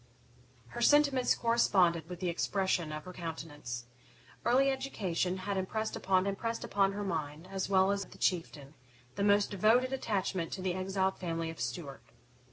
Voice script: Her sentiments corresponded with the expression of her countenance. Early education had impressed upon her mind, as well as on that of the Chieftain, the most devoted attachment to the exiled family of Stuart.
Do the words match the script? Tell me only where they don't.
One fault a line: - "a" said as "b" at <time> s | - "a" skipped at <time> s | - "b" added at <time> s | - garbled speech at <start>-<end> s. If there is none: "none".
- "impressed upon" added at 6.3 s
- "on that" skipped at 8.0 s